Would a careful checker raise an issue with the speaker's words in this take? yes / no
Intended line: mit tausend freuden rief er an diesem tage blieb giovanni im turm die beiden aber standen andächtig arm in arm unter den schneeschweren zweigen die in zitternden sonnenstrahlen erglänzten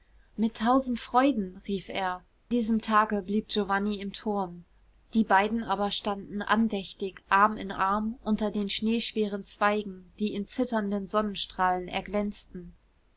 yes